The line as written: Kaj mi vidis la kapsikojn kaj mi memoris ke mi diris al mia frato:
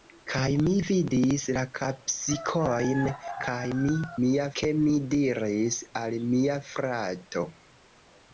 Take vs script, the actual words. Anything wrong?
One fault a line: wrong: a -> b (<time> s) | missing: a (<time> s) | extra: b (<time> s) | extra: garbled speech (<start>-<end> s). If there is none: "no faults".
wrong: memoris -> mia (4.3 s)